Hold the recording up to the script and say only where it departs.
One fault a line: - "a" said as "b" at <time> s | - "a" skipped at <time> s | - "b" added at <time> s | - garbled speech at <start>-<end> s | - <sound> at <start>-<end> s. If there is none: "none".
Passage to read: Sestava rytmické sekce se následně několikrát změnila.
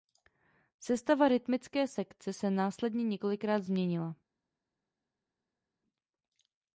none